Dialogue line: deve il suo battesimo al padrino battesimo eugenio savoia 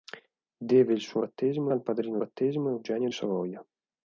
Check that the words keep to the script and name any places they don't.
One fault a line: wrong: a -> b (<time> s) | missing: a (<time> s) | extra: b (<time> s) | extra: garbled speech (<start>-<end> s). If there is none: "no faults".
no faults